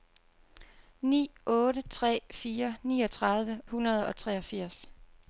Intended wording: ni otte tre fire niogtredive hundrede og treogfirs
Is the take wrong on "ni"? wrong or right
right